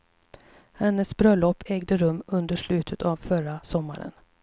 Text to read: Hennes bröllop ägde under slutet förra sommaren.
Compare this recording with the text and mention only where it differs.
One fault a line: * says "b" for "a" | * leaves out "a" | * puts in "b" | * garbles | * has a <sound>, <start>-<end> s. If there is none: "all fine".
* puts in "rum"
* puts in "av"